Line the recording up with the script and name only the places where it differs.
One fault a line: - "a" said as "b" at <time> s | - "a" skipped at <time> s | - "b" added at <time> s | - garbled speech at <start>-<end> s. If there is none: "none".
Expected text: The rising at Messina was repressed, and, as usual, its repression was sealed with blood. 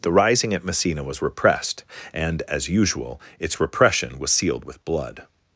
none